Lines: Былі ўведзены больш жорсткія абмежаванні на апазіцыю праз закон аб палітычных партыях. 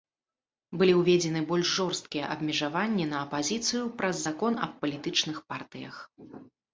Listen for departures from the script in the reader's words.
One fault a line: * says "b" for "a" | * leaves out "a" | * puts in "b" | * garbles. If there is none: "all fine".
all fine